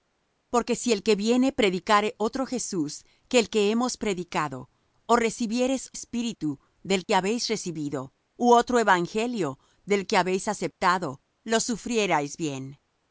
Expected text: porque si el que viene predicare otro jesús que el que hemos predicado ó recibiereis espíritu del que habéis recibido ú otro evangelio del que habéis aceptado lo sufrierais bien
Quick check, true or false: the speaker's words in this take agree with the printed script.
true